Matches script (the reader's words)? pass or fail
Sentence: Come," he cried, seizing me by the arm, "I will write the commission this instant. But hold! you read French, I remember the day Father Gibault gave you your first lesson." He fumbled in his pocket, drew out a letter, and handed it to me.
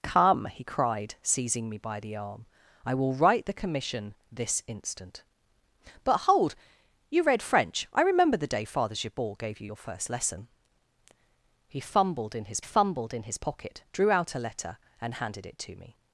fail